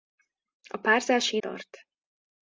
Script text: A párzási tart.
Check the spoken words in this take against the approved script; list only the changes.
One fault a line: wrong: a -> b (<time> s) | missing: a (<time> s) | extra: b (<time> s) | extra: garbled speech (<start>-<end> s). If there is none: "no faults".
no faults